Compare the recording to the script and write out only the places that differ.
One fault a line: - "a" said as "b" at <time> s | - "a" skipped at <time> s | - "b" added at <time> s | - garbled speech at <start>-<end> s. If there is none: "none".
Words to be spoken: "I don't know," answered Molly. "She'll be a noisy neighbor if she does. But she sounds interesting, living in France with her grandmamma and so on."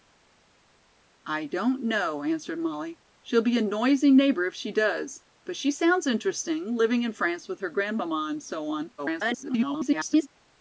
- garbled speech at 9.0-10.3 s